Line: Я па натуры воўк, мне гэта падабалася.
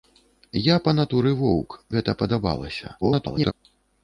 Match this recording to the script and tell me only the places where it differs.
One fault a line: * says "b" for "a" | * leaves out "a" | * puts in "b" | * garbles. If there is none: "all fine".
* leaves out "мне"
* garbles